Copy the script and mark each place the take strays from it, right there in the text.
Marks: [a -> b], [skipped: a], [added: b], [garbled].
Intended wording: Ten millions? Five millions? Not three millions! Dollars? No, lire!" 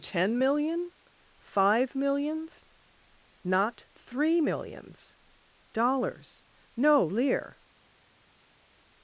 Ten [millions? -> million] Five millions? Not three millions! Dollars? No, lire!"